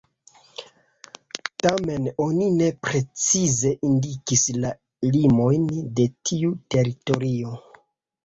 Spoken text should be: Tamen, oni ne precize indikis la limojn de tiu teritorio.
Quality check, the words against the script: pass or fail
pass